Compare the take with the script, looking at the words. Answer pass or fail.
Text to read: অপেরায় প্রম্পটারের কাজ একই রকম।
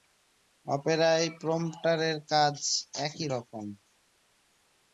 pass